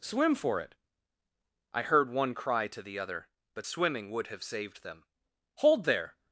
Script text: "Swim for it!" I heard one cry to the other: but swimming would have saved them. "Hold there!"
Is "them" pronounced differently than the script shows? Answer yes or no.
no